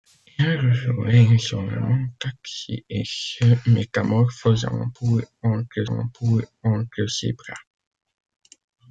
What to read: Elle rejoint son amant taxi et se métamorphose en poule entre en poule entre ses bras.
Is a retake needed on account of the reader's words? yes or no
no